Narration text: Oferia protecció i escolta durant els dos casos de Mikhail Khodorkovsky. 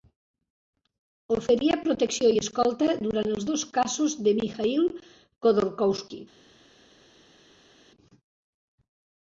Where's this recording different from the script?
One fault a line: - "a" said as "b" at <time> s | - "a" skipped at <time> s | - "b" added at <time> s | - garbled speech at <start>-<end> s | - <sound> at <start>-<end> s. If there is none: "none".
none